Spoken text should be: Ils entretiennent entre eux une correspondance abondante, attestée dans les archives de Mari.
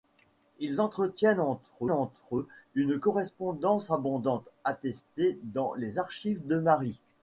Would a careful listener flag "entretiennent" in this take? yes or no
no